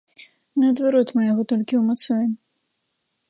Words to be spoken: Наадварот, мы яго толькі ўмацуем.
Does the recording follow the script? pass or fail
pass